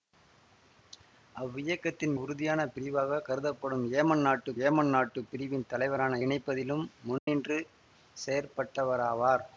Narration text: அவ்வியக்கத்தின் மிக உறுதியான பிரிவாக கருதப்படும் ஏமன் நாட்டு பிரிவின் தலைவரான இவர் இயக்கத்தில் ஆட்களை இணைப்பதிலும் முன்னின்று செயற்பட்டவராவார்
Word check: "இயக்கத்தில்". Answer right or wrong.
wrong